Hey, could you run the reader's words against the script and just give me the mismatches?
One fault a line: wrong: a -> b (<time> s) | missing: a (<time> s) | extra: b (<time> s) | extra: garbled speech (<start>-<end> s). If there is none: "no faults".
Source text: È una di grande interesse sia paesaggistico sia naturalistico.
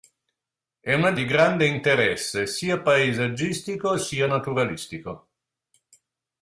no faults